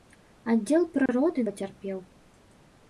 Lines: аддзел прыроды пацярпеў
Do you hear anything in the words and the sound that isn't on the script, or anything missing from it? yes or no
yes